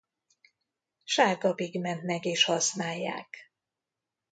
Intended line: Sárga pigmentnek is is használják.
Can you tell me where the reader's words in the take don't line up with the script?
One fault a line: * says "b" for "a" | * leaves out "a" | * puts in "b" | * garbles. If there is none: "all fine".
* leaves out "is"